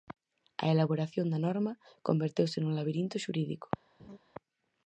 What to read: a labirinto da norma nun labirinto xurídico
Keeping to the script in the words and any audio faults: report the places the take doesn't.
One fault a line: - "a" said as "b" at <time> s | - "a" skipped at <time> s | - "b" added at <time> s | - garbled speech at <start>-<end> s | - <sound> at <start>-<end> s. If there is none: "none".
- "labirinto" said as "elaboración" at 0.7 s
- "converteuse" added at 2.1 s
- laugh at 4.0-4.2 s